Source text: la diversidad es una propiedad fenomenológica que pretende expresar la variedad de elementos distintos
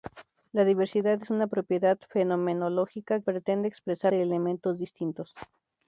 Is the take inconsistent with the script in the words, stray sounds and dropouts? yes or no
yes